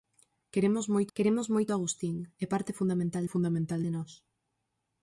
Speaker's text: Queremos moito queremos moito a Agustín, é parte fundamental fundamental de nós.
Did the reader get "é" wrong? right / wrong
right